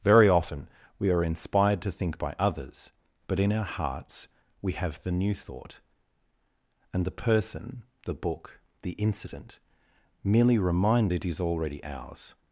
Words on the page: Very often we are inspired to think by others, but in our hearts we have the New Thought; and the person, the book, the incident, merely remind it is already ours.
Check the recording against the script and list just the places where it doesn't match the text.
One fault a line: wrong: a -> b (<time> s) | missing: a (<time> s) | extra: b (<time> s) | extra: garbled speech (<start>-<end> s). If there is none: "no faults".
no faults